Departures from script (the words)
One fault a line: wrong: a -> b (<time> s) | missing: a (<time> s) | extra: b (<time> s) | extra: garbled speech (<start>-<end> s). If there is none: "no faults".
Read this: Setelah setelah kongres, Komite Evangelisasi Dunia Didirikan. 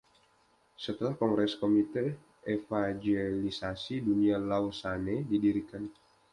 missing: setelah (1.1 s)
extra: Lausanne (4.4 s)